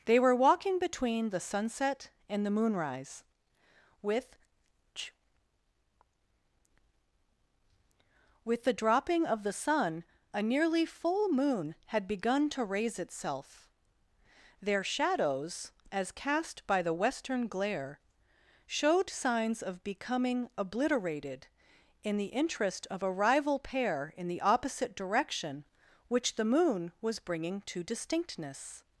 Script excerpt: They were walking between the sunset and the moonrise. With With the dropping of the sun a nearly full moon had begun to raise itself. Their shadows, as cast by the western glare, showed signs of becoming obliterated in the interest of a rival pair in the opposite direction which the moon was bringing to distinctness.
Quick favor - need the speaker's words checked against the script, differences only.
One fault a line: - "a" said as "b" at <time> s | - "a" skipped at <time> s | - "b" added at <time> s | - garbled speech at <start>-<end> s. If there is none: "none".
none